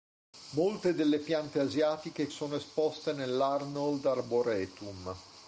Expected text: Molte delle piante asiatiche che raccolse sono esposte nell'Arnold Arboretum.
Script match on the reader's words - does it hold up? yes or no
no